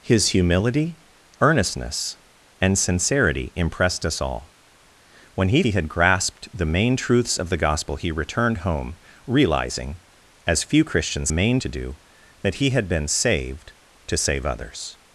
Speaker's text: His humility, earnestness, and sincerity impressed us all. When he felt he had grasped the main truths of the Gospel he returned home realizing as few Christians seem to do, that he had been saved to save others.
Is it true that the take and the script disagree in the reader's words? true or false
true